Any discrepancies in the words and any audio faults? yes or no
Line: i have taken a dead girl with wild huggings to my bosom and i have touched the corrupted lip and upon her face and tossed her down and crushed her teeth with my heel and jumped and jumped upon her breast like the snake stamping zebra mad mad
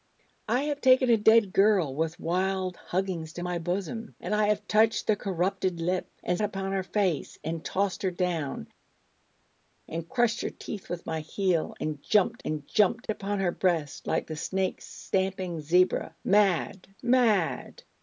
no